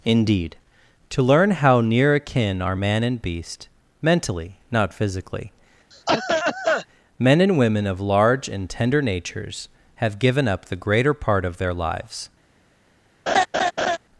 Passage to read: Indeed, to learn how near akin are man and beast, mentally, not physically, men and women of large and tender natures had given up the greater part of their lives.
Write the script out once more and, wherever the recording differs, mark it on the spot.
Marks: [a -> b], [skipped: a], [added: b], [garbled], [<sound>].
Indeed, to learn how near akin are man and beast, mentally, not physically, [cough] men and women of large and tender natures [had -> have] given up the greater part of their lives. [laugh]